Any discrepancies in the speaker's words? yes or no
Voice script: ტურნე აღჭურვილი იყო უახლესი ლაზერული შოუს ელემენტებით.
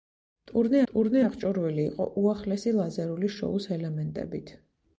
yes